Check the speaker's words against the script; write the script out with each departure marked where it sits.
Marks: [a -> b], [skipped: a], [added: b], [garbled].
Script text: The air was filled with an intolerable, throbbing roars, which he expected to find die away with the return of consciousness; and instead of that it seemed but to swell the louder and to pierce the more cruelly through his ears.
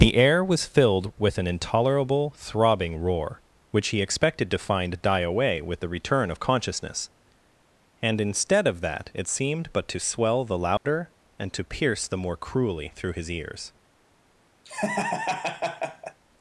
The air was filled with an intolerable, throbbing [roars, -> roar] which he expected to find die away with the return of consciousness; and instead of that it seemed but to swell the louder and to pierce the more cruelly through his ears.